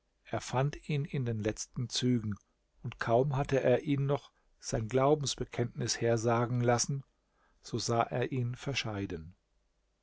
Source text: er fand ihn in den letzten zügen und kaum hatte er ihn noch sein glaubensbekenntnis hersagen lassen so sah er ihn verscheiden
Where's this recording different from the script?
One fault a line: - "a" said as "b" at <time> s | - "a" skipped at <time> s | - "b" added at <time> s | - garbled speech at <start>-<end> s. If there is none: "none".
none